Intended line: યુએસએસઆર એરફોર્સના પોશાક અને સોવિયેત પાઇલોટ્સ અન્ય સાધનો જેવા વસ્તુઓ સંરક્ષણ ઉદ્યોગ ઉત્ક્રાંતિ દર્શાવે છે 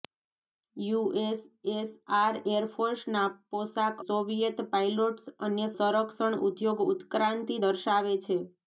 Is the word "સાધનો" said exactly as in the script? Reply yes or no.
no